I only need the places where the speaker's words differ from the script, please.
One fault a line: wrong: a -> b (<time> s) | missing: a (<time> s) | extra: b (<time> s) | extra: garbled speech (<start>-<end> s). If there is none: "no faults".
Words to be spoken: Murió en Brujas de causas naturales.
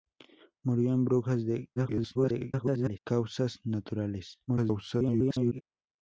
extra: garbled speech (1.8-3.0 s)
extra: garbled speech (4.5-5.6 s)